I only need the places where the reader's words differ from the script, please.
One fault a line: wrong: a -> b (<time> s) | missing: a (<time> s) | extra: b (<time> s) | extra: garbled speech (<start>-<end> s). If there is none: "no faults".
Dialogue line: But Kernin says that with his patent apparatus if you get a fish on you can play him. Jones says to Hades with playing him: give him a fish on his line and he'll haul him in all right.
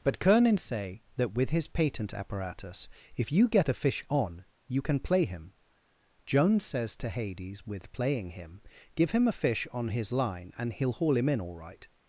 wrong: says -> say (0.6 s)